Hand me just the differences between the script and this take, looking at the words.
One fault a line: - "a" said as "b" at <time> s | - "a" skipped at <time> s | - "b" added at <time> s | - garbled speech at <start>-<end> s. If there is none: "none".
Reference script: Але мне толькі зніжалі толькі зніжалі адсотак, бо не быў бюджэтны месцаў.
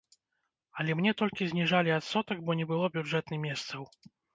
- "толькі зніжалі" skipped at 1.9 s
- "быў" said as "было" at 2.8 s